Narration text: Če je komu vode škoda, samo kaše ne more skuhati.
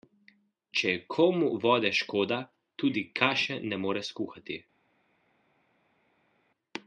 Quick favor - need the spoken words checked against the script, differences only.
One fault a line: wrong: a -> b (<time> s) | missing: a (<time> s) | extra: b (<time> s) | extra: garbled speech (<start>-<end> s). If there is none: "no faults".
wrong: samo -> tudi (2.8 s)